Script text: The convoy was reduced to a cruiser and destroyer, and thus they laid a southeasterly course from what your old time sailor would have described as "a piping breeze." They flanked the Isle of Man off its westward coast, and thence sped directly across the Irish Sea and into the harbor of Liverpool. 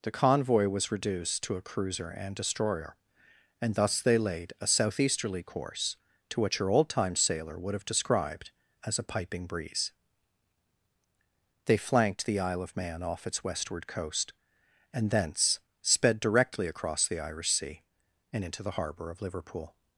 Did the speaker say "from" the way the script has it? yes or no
no